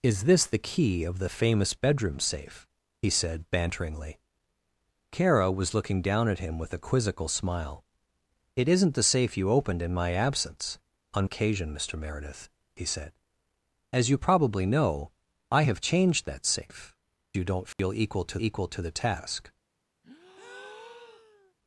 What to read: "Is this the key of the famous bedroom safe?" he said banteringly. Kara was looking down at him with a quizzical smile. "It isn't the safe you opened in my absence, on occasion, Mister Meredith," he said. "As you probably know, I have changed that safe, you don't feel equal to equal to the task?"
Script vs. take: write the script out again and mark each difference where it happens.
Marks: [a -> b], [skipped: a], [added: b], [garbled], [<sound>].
"Is this the key of the famous bedroom safe?" he said banteringly. Kara was looking down at him with a quizzical smile. "It isn't the safe you opened in my absence, on occasion, Mister Meredith," he said. "As you probably know, I have changed that safe, you don't feel [dropout] equal to equal to the task?" [breath]